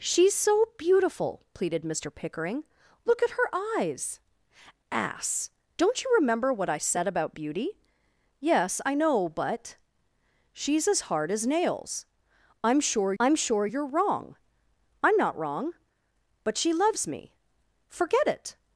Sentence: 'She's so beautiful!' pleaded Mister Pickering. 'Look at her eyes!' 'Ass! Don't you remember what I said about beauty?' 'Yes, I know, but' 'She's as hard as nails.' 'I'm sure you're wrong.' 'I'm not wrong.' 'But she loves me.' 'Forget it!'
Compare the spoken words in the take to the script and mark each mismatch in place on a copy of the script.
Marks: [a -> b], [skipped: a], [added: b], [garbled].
'She's so beautiful!' pleaded Mister Pickering. 'Look at her eyes!' 'Ass! Don't you remember what I said about beauty?' 'Yes, I know, but' 'She's as hard as nails.' 'I'm sure [added: I'm sure] you're wrong.' 'I'm not wrong.' 'But she loves me.' 'Forget it!'